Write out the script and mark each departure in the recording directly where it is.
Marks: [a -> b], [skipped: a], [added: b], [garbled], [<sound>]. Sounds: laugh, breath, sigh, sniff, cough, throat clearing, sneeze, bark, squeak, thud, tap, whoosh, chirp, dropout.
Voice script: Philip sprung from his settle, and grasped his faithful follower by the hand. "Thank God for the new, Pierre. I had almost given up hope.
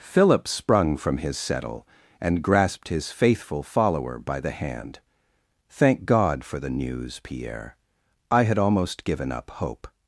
Philip sprung from his settle, and grasped his faithful follower by the hand. "Thank God for the [new, -> news] Pierre. I had almost given up hope.